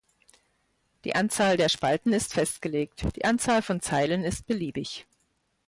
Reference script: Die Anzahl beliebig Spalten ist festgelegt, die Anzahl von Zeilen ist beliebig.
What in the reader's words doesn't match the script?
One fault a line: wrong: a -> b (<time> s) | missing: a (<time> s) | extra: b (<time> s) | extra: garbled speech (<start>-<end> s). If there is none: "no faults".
wrong: beliebig -> der (1.6 s)